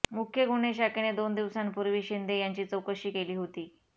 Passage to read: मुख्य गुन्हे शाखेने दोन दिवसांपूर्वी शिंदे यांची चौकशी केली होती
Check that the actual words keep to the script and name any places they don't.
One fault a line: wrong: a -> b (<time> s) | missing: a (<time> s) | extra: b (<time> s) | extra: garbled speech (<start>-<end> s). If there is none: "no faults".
no faults